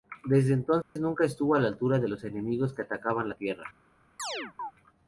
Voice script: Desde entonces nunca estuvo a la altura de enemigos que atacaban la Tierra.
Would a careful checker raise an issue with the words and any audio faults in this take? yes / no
yes